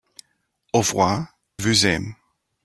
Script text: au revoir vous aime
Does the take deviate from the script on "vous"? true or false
false